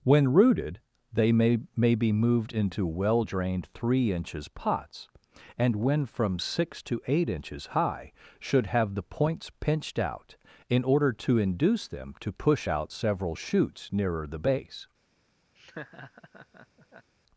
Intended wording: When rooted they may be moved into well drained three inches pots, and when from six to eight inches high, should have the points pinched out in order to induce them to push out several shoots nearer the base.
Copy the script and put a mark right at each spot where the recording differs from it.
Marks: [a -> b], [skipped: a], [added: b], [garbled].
When rooted they may [added: may] be moved into well drained three inches pots, and when from six to eight inches high, should have the points pinched out in order to induce them to push out several shoots nearer the base.